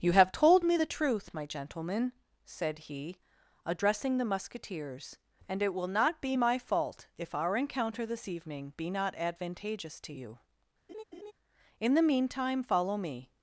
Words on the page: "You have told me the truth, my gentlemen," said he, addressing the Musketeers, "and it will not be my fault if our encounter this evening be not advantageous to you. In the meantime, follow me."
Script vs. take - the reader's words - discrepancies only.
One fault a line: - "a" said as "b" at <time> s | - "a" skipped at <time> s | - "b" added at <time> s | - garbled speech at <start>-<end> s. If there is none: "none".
none